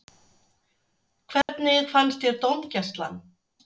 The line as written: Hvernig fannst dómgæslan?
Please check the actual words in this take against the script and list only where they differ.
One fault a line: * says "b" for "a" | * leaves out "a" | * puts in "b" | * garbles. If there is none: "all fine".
* puts in "þér"